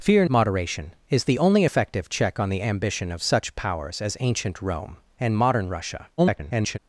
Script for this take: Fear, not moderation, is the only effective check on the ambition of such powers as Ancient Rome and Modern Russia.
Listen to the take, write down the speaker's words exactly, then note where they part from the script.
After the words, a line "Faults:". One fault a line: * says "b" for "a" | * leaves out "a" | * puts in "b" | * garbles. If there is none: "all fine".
Fear, moderation, is the only effective check on the ambition of such powers as Ancient Rome and Modern Russia. [garbled]
Faults:
* leaves out "not"
* garbles